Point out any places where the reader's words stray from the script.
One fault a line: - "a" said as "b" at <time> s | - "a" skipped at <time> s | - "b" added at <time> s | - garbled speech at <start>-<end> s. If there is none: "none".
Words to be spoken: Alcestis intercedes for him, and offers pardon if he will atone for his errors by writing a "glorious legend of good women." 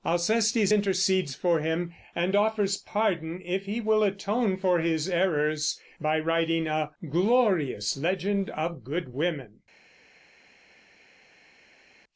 none